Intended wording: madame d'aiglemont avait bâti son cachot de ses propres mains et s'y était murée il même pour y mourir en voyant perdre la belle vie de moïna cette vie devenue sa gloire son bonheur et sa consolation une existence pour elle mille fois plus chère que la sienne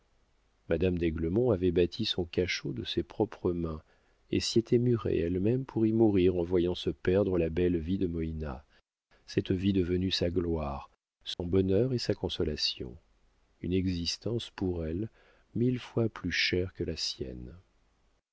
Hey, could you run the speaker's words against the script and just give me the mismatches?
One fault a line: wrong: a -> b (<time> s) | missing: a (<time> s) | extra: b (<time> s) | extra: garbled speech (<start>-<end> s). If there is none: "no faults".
wrong: il -> elle (5.2 s)
extra: se (6.8 s)